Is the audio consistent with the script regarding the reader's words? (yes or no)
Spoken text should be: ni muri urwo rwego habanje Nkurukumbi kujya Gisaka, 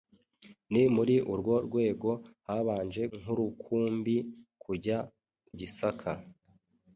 yes